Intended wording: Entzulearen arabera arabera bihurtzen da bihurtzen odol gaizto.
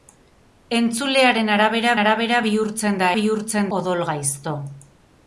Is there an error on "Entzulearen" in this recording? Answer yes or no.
no